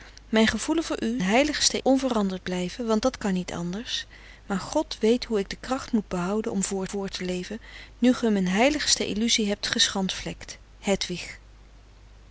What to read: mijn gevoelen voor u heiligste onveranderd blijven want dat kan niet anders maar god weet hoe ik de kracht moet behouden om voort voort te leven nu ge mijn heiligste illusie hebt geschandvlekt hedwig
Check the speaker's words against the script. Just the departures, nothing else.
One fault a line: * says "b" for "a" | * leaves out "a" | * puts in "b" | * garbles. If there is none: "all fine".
all fine